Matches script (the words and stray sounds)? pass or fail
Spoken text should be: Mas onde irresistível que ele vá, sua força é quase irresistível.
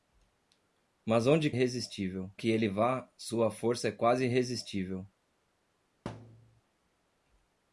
fail